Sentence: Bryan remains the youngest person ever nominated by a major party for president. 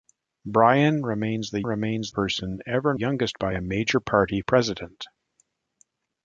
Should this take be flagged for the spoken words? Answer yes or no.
yes